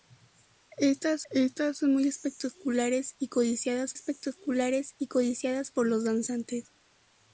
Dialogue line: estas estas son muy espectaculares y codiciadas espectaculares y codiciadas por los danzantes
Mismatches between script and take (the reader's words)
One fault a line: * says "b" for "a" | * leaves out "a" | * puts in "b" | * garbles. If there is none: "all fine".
all fine